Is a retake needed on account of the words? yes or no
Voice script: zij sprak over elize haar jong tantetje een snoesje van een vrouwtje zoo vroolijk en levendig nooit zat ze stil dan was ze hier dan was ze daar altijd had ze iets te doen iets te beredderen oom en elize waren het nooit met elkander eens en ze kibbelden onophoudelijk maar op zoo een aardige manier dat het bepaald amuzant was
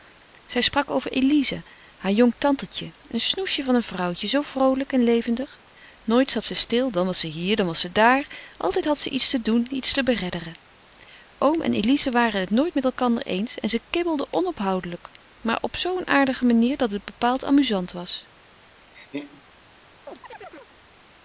no